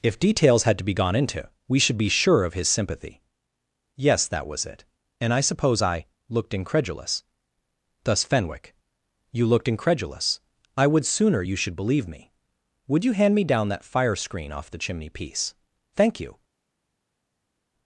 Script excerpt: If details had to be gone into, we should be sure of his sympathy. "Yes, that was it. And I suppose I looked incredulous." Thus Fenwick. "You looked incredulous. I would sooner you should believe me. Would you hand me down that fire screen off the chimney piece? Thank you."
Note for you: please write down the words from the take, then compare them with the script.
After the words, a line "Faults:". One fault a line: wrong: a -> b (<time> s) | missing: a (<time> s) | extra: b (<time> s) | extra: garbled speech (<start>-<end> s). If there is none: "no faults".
If details had to be gone into, we should be sure of his sympathy. "Yes, that was it. And I suppose I looked incredulous." Thus Fenwick. "You looked incredulous. I would sooner you should believe me. Would you hand me down that fire screen off the chimney piece? Thank you."
Faults:
no faults